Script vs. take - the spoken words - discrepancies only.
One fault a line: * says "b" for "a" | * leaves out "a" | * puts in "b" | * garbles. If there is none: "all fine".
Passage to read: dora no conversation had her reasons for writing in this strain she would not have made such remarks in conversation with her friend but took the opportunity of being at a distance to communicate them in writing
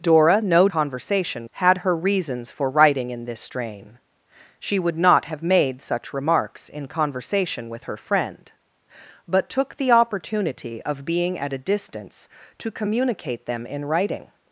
all fine